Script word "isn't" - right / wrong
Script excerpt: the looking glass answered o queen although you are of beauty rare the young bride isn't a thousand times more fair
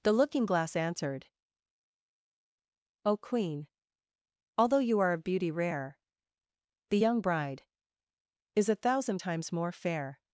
wrong